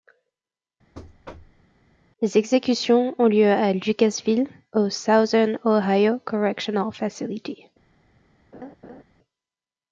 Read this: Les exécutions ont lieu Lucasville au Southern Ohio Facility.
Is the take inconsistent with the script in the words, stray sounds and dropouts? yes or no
yes